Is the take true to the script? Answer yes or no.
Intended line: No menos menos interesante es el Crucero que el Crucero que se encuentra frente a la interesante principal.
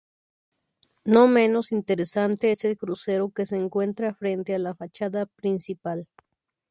no